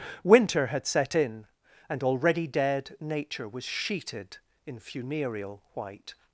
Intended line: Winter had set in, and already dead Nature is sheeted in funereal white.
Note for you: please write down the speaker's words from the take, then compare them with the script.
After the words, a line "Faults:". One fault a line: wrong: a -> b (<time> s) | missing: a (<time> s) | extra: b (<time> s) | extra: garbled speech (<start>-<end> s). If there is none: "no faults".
Winter had set in, and already dead Nature was sheeted in funereal white.
Faults:
wrong: is -> was (3.5 s)